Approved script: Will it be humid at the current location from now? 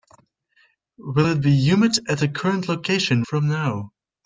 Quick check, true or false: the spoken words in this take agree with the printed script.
true